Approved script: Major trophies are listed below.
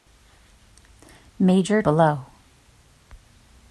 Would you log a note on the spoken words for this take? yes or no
yes